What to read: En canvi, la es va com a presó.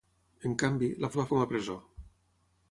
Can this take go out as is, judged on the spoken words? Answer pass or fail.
pass